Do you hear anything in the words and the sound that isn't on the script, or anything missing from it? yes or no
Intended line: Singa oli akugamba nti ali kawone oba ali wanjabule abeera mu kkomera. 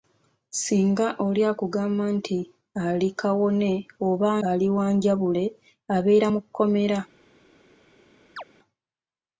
yes